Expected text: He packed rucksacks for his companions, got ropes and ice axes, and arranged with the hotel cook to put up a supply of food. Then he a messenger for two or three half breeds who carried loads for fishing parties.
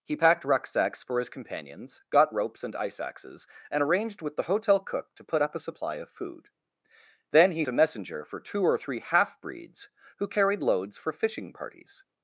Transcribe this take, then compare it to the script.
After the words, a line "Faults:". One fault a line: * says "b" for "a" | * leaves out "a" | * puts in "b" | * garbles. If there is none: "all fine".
He packed rucksacks for his companions, got ropes and ice axes, and arranged with the hotel cook to put up a supply of food. Then he a messenger for two or three half breeds who carried loads for fishing parties.
Faults:
all fine